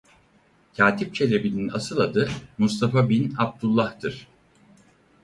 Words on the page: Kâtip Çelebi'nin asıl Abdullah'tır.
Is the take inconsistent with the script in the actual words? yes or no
yes